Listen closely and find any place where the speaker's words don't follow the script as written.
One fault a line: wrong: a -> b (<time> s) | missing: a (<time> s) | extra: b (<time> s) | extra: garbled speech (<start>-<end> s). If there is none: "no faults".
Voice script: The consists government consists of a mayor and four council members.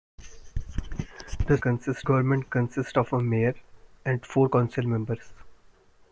no faults